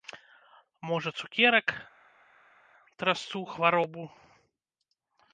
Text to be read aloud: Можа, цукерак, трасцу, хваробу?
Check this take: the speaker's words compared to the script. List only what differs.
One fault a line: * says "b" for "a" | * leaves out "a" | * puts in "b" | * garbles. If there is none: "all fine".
all fine